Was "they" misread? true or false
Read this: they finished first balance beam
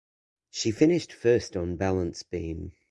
true